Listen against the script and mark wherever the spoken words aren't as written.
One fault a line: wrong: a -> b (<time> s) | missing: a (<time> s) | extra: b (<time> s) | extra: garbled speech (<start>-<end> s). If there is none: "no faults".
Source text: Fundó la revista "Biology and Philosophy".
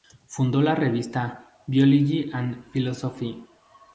no faults